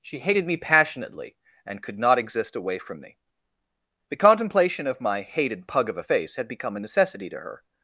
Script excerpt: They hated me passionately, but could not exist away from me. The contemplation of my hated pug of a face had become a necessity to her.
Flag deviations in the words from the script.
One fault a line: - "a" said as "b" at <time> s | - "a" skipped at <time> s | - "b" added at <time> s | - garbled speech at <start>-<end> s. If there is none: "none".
- "They" said as "She" at 0.0 s
- "but" said as "and" at 1.6 s